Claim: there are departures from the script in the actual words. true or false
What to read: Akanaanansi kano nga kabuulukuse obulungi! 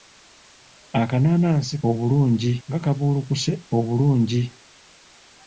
true